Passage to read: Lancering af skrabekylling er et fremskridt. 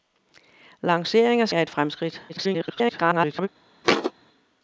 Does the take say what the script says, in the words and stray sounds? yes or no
no